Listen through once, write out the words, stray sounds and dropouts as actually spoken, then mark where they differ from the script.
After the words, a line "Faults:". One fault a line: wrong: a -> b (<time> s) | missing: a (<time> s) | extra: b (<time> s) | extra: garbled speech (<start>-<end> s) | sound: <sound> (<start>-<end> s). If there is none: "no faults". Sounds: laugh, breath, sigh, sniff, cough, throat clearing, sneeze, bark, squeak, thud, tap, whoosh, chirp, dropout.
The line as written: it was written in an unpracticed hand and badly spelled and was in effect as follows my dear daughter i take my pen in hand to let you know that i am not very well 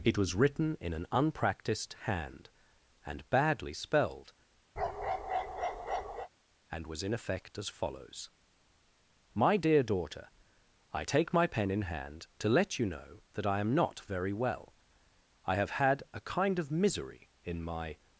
it was written in an unpracticed hand and badly spelled and was in effect as follows my dear daughter i take my pen in hand to let you know that i am not very well i have had a kind of misery in my
Faults:
sound: bark (4.8-6.3 s)
extra: i have had a kind of misery in my (15.4 s)